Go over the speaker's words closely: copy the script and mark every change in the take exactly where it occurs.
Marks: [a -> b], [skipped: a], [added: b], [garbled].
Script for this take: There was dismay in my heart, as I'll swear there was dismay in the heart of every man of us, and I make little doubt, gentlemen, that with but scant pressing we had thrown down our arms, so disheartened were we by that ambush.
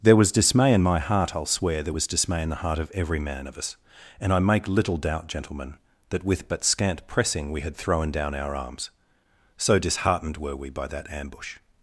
There was dismay in my heart, [skipped: as] I'll swear there was dismay in the heart of every man of us, and I make little doubt, gentlemen, that with but scant pressing we had thrown down our arms, so disheartened were we by that ambush.